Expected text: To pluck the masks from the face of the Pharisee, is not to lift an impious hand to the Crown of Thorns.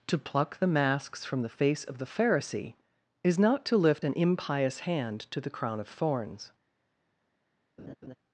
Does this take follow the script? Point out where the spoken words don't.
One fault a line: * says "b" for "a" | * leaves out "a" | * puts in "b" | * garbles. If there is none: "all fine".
all fine